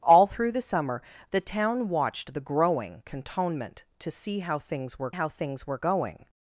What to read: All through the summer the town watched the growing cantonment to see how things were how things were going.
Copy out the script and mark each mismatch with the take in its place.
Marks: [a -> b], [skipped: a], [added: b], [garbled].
All through the summer the town watched the growing cantonment to see how things were how things were going.